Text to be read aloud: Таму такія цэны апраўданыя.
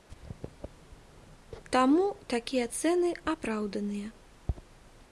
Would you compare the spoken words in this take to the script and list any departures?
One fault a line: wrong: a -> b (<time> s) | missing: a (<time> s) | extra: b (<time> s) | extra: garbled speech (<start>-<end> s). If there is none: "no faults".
no faults